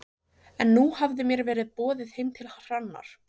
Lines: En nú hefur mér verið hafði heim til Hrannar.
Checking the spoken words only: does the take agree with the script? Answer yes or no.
no